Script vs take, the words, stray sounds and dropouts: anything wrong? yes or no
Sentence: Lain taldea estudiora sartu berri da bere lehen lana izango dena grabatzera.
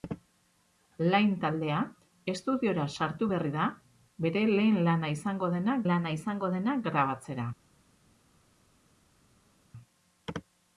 yes